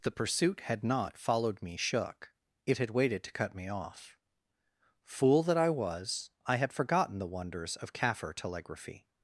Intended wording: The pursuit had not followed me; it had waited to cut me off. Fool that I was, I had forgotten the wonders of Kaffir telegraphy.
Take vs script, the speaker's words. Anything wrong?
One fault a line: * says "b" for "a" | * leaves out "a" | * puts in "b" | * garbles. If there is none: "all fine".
* puts in "shook"